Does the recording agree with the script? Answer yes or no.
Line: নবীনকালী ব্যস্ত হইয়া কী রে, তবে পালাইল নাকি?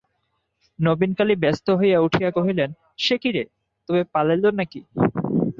no